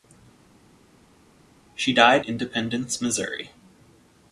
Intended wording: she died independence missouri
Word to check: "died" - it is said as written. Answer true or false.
true